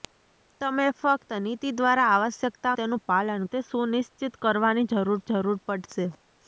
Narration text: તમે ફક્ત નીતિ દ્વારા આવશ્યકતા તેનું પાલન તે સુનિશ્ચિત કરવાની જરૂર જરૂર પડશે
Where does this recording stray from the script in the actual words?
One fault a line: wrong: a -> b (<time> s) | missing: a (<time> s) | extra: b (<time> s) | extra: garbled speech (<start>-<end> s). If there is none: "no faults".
no faults